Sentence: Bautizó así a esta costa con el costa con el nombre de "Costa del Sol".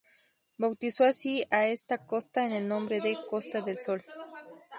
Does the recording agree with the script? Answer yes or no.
no